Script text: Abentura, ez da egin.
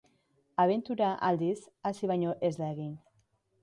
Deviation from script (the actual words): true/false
true